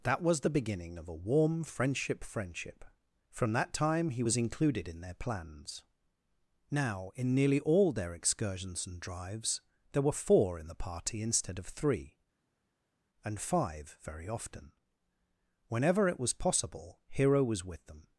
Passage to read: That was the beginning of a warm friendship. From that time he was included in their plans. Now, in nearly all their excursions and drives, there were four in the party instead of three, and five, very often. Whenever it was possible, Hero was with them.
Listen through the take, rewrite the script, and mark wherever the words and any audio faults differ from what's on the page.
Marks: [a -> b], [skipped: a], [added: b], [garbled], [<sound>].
That was the beginning of a warm friendship. [added: friendship] From that time he was included in their plans. Now, in nearly all their excursions and drives, there were four in the party instead of three, and five, very often. Whenever it was possible, Hero was with them.